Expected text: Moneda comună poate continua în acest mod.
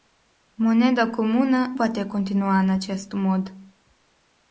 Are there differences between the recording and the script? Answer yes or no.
no